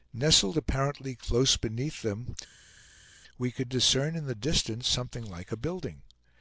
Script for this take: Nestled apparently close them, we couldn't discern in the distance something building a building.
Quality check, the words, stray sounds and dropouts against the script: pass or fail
fail